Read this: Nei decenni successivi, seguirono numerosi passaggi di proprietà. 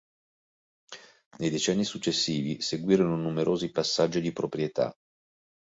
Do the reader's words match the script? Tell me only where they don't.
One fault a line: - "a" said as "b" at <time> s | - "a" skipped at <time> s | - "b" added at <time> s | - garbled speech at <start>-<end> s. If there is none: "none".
none